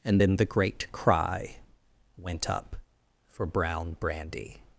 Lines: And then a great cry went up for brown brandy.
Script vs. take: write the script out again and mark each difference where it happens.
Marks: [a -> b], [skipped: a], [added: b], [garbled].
And then [a -> the] great cry went up for brown brandy.